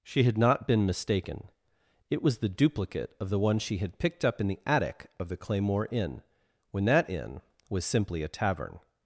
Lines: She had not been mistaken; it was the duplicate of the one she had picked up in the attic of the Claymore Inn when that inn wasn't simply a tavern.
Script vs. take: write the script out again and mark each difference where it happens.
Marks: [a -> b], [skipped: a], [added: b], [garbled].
She had not been mistaken; it was the duplicate of the one she had picked up in the attic of the Claymore Inn when that inn [wasn't -> was] simply a tavern.